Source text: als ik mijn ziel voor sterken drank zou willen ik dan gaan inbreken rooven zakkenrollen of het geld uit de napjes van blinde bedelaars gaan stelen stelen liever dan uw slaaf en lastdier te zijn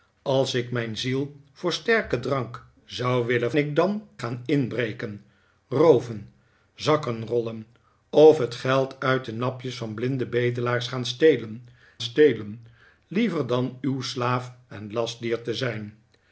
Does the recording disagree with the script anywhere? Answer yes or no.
no